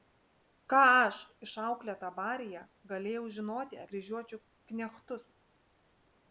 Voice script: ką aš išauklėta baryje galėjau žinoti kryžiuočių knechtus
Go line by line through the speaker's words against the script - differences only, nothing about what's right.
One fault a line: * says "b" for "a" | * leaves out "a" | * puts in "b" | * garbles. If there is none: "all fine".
all fine